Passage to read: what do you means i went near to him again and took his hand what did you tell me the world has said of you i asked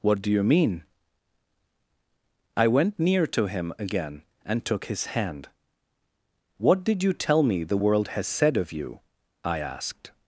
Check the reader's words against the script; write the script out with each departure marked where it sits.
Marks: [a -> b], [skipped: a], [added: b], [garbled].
what do you [means -> mean] i went near to him again and took his hand what did you tell me the world has said of you i asked